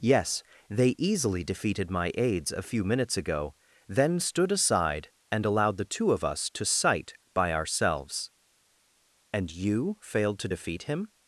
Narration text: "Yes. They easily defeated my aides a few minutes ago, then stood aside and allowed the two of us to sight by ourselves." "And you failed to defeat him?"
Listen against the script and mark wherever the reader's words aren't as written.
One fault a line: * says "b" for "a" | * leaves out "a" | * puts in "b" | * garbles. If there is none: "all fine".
all fine